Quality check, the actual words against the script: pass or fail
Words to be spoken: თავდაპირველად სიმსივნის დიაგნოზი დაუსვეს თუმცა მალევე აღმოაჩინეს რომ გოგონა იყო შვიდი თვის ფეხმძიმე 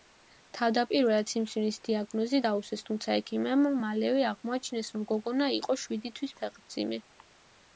fail